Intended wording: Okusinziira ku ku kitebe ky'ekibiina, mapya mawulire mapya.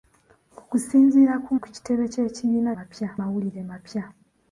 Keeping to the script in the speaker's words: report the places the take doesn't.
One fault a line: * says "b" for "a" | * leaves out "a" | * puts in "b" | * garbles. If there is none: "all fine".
all fine